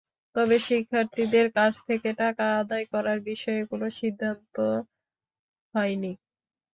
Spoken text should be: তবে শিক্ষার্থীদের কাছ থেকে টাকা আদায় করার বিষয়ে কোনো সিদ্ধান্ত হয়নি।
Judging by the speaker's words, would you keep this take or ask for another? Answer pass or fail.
pass